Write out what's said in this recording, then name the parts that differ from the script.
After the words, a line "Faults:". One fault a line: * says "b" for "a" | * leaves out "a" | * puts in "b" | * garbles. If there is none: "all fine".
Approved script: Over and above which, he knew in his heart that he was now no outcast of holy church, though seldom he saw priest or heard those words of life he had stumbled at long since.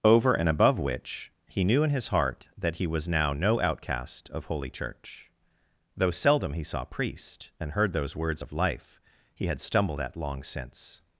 Over and above which, he knew in his heart that he was now no outcast of holy church, though seldom he saw priest and heard those words of life he had stumbled at long since.
Faults:
* says "and" for "or"